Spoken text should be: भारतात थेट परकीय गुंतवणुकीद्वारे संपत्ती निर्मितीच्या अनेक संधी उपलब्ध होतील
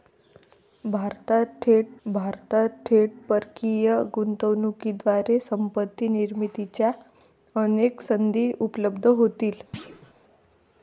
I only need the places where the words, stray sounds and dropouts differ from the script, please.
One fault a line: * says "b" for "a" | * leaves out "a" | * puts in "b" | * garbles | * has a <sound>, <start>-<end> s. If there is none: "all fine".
* puts in "भारतात थेट"
* has a thud, 9.7-10.1 s